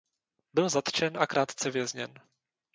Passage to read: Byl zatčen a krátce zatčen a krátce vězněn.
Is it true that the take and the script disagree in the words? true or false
true